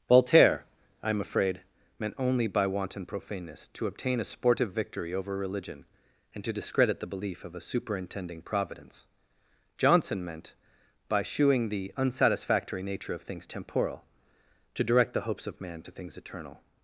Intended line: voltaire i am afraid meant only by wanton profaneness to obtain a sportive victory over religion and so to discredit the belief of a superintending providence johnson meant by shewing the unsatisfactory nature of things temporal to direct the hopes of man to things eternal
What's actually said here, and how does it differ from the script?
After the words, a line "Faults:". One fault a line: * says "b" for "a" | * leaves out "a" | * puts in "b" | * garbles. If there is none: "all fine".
voltaire i am afraid meant only by wanton profaneness to obtain a sportive victory over religion and to discredit the belief of a superintending providence johnson meant by shewing the unsatisfactory nature of things temporal to direct the hopes of man to things eternal
Faults:
* leaves out "so"